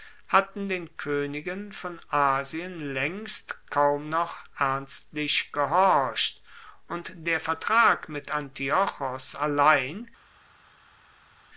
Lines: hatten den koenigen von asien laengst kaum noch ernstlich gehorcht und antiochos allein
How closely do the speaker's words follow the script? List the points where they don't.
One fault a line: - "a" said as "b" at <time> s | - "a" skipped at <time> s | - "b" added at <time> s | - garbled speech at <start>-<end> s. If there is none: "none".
- "der vertrag mit" added at 7.2 s